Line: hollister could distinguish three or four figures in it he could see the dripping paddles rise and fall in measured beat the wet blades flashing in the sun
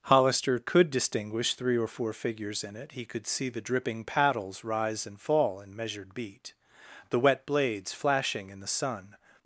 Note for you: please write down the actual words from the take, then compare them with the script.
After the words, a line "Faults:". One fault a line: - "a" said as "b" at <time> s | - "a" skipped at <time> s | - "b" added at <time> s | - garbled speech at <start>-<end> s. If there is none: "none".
hollister could distinguish three or four figures in it he could see the dripping paddles rise and fall in measured beat the wet blades flashing in the sun
Faults:
none